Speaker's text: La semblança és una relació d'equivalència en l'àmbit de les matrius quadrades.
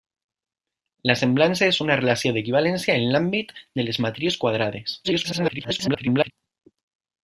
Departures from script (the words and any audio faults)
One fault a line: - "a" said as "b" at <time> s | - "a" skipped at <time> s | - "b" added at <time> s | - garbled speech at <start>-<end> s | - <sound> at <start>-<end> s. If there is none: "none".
- garbled speech at 5.0-6.3 s